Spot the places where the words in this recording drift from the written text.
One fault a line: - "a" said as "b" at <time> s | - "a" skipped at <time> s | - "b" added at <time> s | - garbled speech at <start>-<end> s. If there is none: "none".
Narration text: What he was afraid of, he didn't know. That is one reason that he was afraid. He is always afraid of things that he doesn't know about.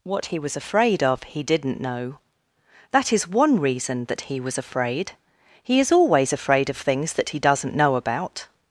none